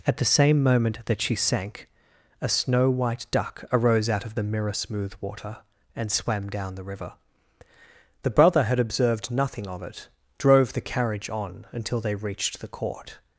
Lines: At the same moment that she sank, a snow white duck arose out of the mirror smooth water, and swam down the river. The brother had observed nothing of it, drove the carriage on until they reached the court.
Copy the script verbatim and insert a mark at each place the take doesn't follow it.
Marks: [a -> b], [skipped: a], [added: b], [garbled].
At the same moment that she sank, a snow white duck arose out of the mirror smooth water, and swam down the river. The brother had observed nothing of it, drove the carriage on until they reached the court.